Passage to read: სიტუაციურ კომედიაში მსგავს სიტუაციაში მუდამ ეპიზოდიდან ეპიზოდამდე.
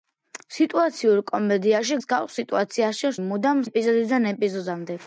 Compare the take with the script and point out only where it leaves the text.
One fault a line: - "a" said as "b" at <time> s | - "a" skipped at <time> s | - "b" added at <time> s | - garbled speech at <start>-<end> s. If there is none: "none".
none